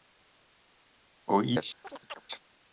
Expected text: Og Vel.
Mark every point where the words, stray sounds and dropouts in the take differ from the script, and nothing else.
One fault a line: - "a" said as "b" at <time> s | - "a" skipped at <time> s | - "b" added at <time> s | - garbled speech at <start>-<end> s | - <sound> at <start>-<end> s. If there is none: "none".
- chirp at 1.8-2.2 s